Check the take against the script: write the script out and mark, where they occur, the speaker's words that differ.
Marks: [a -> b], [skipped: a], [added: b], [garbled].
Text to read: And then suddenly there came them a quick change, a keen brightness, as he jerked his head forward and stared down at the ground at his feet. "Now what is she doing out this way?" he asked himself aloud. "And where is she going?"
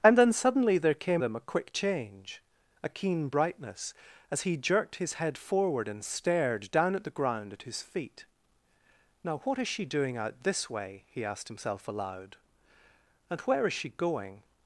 And then suddenly there came them a quick change, a keen brightness, as he jerked his head forward and stared down at the ground at his feet. "Now what is she doing out this way?" he asked himself aloud. "And where is she going?"